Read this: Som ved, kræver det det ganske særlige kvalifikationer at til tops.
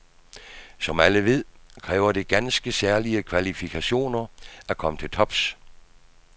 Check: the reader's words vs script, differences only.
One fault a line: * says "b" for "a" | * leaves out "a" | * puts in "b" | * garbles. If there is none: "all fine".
* puts in "alle"
* leaves out "det"
* puts in "komme"